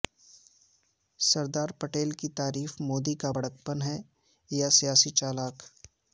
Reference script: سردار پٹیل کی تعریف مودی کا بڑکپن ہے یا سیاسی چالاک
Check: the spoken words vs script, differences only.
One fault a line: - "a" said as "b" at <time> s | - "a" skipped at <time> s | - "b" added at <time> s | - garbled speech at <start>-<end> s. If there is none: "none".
none